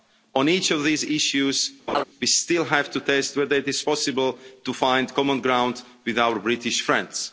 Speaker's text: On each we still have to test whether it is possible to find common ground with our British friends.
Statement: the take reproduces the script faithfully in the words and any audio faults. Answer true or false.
false